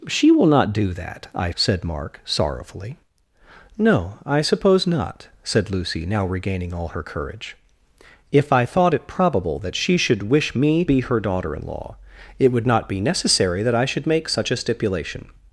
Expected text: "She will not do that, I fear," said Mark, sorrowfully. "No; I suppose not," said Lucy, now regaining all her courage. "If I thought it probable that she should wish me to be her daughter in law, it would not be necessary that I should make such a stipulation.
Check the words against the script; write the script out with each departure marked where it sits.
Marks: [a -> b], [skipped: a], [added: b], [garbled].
"She will not do that, I [skipped: fear,"] said Mark, sorrowfully. "No; I suppose not," said Lucy, now regaining all her courage. "If I thought it probable that she should wish me [skipped: to] be her daughter in law, it would not be necessary that I should make such a stipulation.